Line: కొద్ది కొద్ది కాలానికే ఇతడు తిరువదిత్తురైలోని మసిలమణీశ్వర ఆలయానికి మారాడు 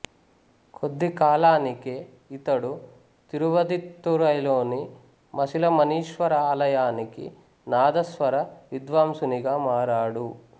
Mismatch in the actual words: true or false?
true